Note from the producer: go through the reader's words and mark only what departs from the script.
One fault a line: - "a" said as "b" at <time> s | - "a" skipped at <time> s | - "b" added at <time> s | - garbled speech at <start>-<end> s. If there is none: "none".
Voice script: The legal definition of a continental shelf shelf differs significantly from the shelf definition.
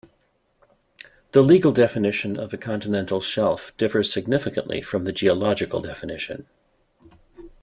- "shelf" skipped at 3.7 s
- "shelf" said as "geological" at 5.1 s